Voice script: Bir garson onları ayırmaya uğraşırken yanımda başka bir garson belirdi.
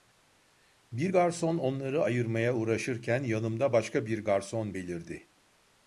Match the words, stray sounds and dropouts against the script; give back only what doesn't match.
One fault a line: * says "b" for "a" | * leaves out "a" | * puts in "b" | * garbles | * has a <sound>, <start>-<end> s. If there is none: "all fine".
all fine